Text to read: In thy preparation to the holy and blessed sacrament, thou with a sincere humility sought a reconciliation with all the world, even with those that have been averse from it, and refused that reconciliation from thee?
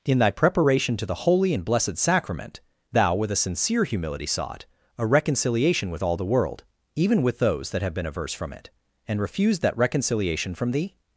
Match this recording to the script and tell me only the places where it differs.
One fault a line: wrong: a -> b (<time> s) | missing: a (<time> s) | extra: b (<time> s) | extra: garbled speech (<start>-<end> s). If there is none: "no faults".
no faults